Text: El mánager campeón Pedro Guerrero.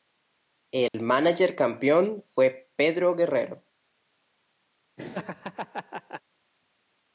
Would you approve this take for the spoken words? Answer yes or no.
no